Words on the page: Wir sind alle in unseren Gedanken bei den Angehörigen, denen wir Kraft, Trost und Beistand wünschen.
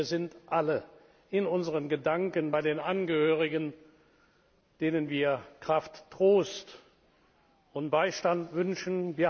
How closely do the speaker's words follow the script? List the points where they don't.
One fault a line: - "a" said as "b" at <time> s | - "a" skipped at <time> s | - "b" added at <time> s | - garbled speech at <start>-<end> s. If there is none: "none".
none